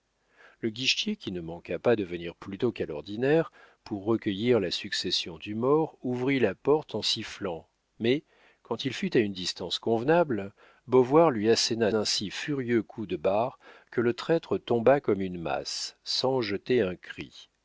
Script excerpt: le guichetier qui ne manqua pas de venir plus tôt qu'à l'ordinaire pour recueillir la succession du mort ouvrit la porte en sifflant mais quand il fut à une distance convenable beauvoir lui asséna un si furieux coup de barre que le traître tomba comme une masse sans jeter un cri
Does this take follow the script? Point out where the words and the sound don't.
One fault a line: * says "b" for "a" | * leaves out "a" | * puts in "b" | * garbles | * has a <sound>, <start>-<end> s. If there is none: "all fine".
all fine